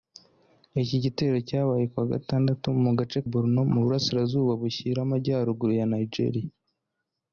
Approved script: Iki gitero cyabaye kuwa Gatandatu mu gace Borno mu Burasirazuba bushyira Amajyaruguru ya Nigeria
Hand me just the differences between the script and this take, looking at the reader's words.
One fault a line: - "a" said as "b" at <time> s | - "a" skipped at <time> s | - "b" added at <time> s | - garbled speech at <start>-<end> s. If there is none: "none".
none